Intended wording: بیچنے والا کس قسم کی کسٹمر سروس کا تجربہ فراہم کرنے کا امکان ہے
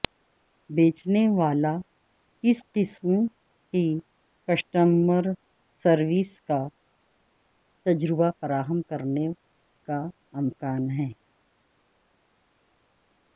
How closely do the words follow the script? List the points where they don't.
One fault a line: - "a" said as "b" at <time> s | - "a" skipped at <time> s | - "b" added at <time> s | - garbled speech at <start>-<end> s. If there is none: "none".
none